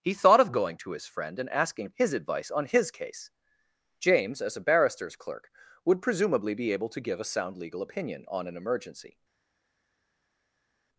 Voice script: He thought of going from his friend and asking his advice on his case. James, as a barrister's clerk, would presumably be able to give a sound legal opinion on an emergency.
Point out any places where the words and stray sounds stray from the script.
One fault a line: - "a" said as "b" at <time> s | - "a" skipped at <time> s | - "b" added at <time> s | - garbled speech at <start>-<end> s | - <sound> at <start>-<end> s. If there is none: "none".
- "from" said as "to" at 0.8 s